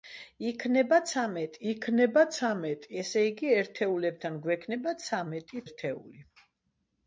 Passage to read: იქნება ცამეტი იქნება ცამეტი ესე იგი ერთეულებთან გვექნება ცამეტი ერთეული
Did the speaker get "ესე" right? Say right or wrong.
right